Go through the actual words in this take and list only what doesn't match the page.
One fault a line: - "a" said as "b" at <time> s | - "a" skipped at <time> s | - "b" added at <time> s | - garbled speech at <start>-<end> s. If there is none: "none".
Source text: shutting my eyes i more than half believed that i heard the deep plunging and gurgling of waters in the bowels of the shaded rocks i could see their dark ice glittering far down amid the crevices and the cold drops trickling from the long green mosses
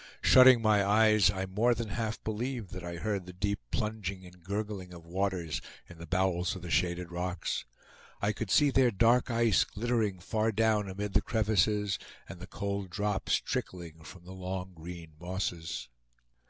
none